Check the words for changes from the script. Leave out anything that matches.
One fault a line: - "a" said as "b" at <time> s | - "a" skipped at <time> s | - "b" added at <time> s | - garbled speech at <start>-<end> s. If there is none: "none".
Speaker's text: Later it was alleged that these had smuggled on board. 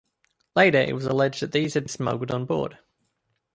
none